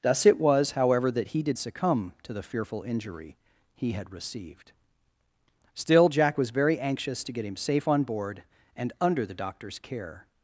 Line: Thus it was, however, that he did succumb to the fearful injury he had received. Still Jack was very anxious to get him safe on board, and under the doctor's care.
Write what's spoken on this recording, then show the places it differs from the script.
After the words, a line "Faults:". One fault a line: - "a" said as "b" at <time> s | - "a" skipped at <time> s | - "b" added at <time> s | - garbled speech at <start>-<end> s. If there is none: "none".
Thus it was, however, that he did succumb to the fearful injury he had received. Still Jack was very anxious to get him safe on board, and under the doctor's care.
Faults:
none